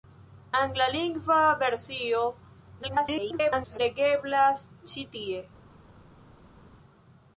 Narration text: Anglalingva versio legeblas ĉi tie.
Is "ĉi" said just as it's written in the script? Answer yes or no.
yes